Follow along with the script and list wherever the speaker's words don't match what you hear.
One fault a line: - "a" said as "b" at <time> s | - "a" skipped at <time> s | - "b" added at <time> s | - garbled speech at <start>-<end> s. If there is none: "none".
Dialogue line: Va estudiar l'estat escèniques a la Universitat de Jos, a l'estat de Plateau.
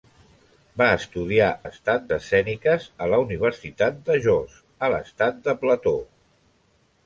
none